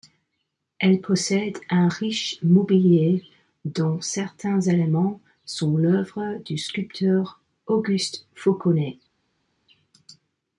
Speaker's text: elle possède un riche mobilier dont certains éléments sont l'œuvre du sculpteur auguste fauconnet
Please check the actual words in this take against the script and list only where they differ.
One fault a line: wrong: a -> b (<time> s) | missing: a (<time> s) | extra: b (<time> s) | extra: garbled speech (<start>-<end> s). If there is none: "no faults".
no faults